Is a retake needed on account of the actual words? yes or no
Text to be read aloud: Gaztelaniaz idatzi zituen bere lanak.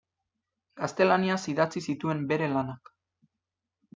no